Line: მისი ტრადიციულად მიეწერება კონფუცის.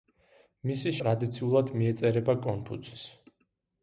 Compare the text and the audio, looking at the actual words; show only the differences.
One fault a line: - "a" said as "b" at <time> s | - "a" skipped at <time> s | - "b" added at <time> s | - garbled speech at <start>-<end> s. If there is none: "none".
none